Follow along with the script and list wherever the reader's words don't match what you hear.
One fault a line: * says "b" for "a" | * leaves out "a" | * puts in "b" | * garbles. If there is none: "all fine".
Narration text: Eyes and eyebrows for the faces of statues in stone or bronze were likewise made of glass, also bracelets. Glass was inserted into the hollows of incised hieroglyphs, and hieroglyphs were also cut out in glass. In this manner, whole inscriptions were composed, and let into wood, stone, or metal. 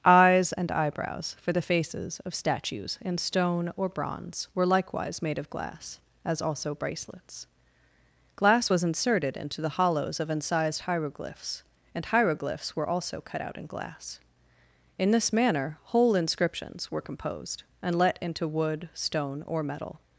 * puts in "as"